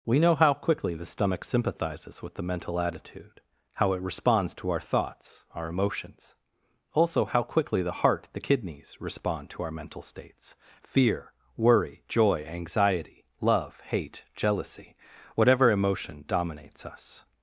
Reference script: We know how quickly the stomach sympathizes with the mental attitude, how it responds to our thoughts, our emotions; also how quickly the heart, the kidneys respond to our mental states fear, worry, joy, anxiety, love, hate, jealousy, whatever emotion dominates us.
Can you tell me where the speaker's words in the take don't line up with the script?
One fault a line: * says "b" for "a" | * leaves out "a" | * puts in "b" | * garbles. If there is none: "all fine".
all fine